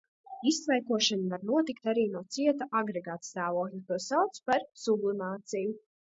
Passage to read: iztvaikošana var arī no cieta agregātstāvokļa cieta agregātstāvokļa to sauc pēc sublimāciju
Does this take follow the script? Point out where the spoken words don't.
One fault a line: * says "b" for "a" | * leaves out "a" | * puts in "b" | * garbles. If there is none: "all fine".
* puts in "notikt"
* leaves out "cieta agregātstāvokļa"
* says "par" for "pēc"